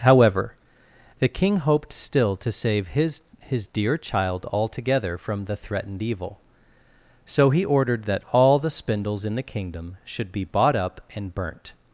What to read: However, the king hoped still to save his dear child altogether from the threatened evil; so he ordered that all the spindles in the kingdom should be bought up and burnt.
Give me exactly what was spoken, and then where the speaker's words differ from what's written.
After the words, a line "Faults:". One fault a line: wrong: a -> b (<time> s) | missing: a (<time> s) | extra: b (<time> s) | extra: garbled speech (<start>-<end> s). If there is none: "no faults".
However, the king hoped still to save his his dear child altogether from the threatened evil; so he ordered that all the spindles in the kingdom should be bought up and burnt.
Faults:
extra: his (3.5 s)